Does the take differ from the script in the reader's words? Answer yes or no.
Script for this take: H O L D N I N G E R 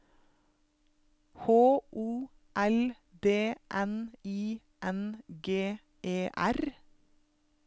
no